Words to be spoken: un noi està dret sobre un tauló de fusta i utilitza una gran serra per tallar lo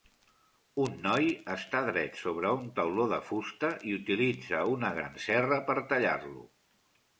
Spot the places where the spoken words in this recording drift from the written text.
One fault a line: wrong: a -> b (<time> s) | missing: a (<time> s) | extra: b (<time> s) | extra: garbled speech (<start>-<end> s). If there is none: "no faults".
no faults